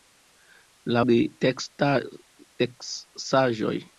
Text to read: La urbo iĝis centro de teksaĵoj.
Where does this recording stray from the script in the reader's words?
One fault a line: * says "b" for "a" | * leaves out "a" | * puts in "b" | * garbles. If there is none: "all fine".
* leaves out "urbo iĝis centro"